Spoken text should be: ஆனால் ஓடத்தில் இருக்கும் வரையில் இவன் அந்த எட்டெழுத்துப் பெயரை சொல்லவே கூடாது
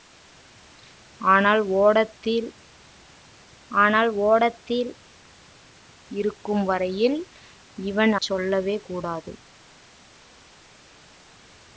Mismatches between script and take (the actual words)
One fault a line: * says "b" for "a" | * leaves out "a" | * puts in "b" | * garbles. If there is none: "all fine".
* puts in "ஆனால் ஓடத்தில்"
* leaves out "அந்த எட்டெழுத்துப் பெயரை"